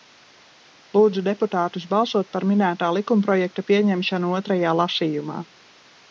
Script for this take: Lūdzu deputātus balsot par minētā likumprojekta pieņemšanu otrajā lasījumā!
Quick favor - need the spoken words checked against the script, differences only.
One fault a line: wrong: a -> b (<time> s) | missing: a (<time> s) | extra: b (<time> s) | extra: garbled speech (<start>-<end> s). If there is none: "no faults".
no faults